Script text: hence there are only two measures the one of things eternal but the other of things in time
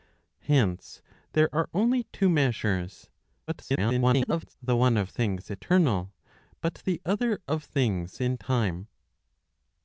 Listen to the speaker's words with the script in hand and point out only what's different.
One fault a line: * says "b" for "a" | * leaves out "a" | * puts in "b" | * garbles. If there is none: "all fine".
* garbles